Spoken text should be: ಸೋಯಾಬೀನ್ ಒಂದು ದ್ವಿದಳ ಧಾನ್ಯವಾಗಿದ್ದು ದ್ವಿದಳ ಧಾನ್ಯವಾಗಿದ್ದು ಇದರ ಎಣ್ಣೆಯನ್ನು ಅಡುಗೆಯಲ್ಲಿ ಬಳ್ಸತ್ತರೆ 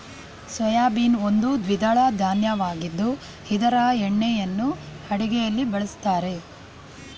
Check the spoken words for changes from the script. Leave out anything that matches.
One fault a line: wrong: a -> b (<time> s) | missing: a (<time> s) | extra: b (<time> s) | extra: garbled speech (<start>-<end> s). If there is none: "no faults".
missing: ದ್ವಿದಳ ಧಾನ್ಯವಾಗಿದ್ದು (3.1 s)